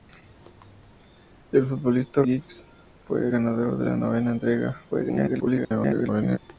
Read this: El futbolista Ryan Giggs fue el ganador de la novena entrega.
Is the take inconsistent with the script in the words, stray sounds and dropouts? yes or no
yes